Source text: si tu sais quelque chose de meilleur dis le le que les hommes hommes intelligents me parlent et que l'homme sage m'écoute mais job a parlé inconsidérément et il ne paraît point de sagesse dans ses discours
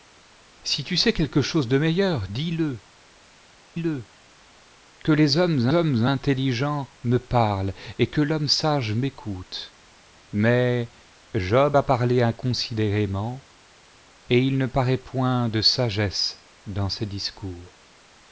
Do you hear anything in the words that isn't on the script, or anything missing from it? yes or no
no